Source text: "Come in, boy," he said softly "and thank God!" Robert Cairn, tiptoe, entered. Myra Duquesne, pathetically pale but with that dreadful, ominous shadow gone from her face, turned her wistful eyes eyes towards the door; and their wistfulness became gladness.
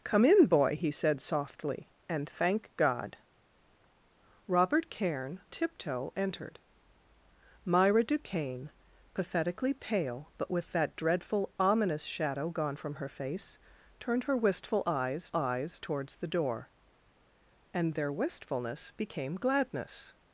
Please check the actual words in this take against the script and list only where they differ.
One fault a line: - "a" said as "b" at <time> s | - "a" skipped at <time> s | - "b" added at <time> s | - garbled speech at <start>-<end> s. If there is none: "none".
none